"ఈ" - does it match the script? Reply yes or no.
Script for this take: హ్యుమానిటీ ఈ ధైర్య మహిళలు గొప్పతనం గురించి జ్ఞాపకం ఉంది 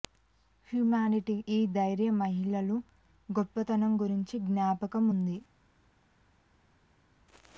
yes